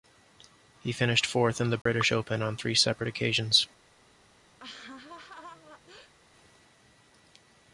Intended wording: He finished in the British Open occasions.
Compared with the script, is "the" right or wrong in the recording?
right